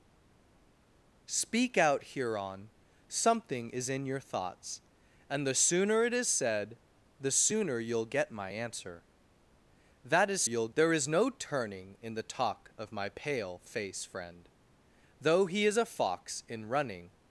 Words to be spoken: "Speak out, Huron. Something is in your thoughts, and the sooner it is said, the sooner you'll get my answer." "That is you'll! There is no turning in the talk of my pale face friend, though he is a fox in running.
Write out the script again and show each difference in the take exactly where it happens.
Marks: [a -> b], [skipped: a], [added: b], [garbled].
"Speak out, Huron. Something is in your thoughts, and the sooner it is said, the sooner you'll get my answer." "That is you'll! There is no turning in the talk of my pale face friend, though he is a fox in running.